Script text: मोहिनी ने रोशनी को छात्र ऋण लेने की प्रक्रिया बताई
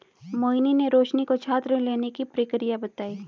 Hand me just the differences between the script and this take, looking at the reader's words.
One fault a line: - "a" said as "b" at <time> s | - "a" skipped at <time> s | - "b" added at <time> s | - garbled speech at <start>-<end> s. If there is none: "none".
none